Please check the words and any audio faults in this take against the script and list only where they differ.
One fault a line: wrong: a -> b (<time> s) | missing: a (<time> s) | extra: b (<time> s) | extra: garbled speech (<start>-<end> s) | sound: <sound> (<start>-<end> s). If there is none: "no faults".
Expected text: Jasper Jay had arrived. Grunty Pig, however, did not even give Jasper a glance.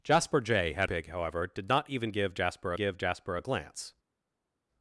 missing: arrived Grunty (0.9 s)
extra: give Jasper (2.7 s)